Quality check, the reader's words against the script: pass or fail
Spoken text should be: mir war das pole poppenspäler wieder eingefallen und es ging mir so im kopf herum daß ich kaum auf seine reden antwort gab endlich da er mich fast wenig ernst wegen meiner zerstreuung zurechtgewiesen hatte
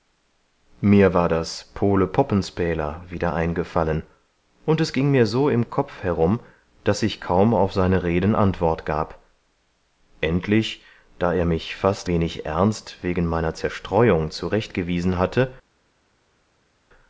pass